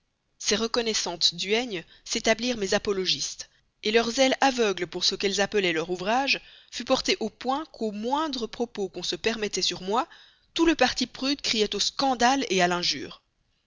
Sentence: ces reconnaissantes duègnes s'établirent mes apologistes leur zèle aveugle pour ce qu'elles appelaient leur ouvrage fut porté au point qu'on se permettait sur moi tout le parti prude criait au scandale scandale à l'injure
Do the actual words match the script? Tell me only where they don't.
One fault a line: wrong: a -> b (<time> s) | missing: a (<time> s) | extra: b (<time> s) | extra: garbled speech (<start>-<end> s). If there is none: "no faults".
extra: qu'au moindre propos (7.7 s)
missing: scandale (12.4 s)